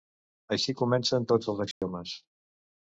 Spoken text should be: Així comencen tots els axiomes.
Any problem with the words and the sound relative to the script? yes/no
yes